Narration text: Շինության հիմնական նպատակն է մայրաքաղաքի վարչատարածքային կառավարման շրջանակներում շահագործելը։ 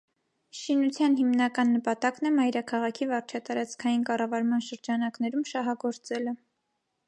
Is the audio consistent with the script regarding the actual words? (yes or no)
yes